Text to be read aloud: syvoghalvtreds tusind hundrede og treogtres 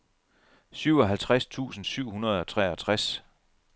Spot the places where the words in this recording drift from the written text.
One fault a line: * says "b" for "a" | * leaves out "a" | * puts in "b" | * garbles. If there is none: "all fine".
* puts in "syv"